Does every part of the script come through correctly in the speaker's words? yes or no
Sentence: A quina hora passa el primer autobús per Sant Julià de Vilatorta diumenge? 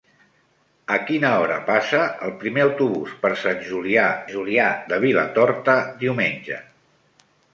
no